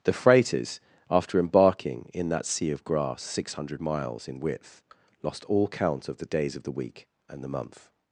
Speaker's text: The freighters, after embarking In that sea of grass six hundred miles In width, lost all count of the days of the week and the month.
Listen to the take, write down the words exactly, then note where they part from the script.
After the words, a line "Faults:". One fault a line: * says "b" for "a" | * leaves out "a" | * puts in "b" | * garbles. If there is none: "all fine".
The freighters, after embarking In that sea of grass six hundred miles In width, lost all count of the days of the week and the month.
Faults:
all fine